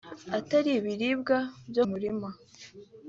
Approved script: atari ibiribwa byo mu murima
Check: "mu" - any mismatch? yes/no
yes